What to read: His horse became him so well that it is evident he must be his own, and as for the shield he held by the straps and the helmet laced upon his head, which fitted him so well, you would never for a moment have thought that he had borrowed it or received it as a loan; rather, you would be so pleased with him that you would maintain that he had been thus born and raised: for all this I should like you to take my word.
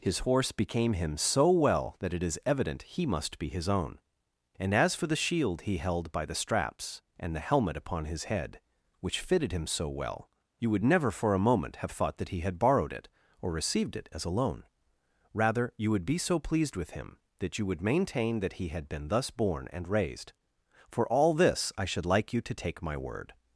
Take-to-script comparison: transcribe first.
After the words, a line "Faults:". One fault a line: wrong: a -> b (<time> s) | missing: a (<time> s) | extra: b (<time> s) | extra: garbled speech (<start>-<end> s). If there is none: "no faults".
His horse became him so well that it is evident he must be his own, and as for the shield he held by the straps and the helmet upon his head, which fitted him so well, you would never for a moment have thought that he had borrowed it or received it as a loan; rather, you would be so pleased with him that you would maintain that he had been thus born and raised: for all this I should like you to take my word.
Faults:
missing: laced (7.8 s)